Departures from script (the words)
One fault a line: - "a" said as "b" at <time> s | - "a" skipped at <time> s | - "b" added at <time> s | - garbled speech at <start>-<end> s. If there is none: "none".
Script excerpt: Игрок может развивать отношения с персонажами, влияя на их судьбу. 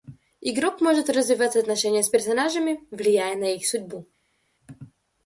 none